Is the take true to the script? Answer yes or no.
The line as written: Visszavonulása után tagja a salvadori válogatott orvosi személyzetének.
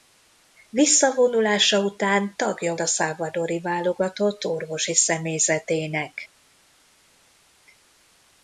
yes